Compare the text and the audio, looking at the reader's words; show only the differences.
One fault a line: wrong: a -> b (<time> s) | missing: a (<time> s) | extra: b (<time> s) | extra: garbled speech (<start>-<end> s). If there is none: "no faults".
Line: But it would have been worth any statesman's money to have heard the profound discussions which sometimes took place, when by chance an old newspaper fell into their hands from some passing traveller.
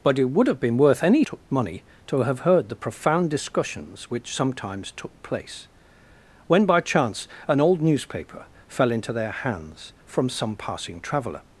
wrong: statesman's -> took (1.2 s)